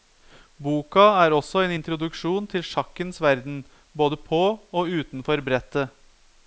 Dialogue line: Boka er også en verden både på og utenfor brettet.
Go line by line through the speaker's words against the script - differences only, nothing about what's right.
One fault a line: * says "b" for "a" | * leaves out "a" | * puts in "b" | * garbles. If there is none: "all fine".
* puts in "introduksjon til sjakkens"